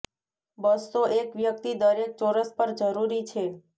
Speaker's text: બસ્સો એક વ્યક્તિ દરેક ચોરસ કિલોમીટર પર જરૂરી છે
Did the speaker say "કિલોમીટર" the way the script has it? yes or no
no